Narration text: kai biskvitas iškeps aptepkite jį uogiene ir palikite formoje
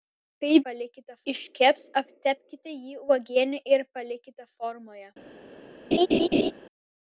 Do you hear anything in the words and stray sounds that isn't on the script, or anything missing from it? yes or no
yes